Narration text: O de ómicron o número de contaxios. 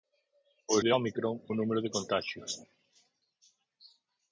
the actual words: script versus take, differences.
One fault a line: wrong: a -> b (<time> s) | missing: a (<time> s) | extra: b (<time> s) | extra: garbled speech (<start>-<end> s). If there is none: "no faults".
no faults